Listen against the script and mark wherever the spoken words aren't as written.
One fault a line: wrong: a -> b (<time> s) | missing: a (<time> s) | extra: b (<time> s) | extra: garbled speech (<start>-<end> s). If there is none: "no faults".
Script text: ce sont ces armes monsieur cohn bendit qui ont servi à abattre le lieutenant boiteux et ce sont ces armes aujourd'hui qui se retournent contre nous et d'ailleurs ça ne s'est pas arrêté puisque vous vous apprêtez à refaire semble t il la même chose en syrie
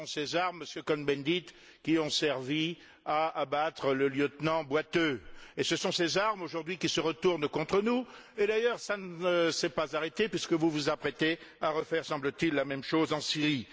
no faults